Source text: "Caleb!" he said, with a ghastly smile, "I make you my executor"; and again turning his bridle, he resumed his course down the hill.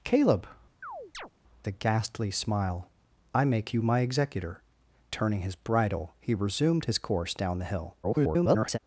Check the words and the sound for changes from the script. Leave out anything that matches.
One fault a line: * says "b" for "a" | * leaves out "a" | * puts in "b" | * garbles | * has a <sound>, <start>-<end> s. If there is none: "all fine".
* leaves out "he said with"
* has a chirp, 0.8-1.3 s
* leaves out "and again"
* garbles